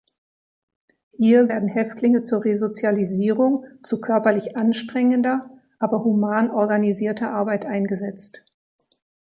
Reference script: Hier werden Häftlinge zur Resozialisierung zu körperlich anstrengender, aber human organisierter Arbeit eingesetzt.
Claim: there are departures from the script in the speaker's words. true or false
false